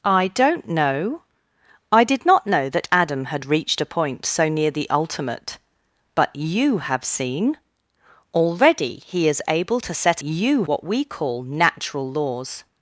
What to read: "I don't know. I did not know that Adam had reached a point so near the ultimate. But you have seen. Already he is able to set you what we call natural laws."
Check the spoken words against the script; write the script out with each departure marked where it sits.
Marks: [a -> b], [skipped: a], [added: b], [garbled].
"I don't know. I did not know that Adam had reached a point so near the ultimate. But you have seen. Already he is able to set you what we call natural laws."